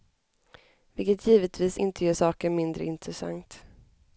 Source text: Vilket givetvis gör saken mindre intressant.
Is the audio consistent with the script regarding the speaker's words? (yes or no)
no